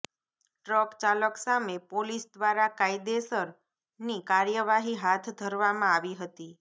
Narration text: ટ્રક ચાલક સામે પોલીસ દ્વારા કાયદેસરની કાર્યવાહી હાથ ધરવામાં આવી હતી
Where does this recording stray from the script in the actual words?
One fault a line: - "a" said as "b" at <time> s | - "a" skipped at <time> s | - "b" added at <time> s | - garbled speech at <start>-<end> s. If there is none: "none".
none